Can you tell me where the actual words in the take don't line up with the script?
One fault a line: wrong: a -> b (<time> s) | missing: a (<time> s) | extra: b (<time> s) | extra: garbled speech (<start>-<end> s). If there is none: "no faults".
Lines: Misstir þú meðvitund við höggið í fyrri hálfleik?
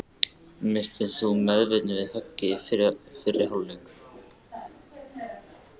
no faults